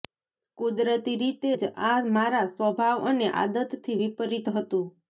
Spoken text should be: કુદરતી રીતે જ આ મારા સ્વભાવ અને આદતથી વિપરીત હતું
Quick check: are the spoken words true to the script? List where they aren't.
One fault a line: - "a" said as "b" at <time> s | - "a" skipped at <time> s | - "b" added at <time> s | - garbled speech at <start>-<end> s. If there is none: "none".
none